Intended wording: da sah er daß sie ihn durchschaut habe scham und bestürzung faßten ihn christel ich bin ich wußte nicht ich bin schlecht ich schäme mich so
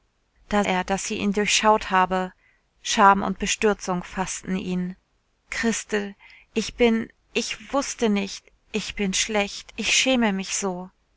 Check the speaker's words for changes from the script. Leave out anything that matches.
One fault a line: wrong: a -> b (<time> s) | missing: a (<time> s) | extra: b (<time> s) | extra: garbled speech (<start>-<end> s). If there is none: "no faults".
missing: sah (0.6 s)